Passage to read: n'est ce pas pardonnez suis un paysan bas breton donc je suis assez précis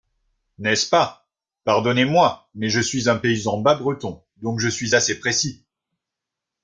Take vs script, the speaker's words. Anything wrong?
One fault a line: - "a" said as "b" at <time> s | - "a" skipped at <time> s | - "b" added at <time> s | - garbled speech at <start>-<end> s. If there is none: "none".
- "moi mais je" added at 2.0 s